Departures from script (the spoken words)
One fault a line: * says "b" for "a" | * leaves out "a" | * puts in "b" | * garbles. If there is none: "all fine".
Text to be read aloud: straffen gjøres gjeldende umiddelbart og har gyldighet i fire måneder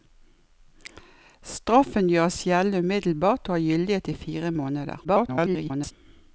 * garbles